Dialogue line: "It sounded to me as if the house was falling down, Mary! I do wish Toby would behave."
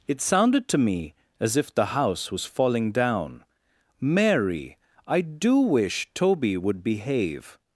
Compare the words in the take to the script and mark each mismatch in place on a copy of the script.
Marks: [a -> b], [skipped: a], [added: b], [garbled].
"It sounded to me as if the house was falling down, Mary! I do wish Toby would behave."